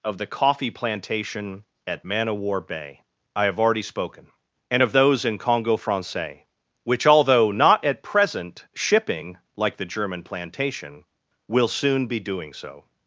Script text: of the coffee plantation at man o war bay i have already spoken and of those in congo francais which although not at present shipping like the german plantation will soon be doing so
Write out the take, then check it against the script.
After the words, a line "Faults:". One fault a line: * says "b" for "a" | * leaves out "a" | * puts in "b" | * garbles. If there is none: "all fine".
of the coffee plantation at man o war bay i have already spoken and of those in congo francais which although not at present shipping like the german plantation will soon be doing so
Faults:
all fine